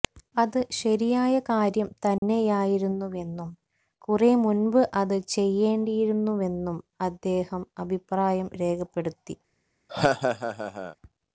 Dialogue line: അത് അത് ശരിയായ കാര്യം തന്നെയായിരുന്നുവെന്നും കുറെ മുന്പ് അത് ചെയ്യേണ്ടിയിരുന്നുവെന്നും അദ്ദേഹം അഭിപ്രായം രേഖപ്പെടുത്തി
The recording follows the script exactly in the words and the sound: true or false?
false